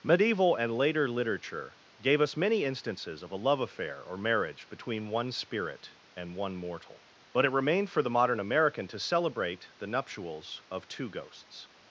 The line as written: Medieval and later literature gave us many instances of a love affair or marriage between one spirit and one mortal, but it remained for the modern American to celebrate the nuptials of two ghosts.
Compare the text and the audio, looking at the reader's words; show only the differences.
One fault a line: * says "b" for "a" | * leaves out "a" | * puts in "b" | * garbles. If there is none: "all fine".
all fine